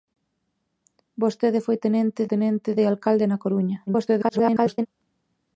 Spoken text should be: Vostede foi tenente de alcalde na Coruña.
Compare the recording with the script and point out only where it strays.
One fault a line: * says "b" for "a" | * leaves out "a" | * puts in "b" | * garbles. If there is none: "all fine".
* puts in "tenente"
* garbles